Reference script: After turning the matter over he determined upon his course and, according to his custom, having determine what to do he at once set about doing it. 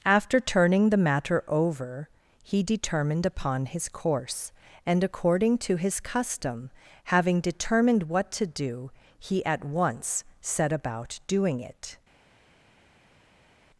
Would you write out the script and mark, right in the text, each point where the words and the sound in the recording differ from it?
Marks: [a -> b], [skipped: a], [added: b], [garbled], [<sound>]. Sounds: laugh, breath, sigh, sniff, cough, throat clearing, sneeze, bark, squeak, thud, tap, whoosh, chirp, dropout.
After turning the matter over he determined upon his course and, according to his custom, having [determine -> determined] what to do he at once set about doing it.